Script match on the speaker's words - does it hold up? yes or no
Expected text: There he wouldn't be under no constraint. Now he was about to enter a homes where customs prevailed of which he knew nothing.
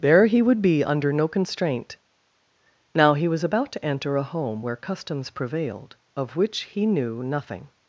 no